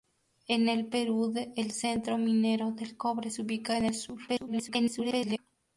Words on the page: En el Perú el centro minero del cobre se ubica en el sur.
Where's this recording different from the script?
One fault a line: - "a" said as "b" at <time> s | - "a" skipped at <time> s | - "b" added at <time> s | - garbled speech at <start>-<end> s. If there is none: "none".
- garbled speech at 4.3-5.4 s